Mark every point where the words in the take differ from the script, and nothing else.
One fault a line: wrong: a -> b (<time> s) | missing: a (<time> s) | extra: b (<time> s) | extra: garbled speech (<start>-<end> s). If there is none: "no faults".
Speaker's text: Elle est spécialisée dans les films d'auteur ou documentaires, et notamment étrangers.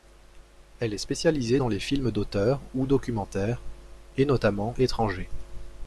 no faults